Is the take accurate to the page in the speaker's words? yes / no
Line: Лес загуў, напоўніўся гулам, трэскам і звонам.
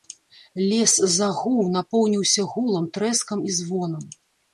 yes